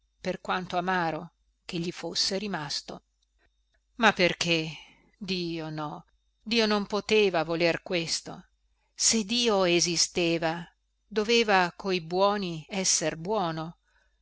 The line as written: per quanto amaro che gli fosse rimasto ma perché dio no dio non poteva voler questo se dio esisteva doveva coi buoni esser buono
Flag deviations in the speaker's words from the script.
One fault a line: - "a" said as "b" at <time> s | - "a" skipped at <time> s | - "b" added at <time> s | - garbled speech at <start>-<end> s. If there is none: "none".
none